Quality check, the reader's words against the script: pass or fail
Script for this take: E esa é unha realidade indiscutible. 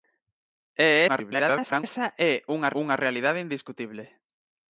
fail